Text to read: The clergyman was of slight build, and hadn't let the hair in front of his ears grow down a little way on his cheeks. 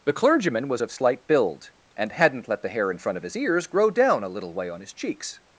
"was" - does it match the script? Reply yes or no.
yes